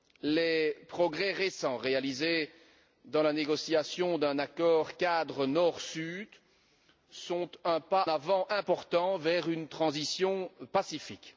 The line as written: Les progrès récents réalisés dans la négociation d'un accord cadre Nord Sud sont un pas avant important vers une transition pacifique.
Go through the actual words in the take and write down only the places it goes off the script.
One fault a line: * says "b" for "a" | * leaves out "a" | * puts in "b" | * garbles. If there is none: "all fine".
all fine